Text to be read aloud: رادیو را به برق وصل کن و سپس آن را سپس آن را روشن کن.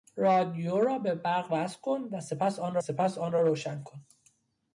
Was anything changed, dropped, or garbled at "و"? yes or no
no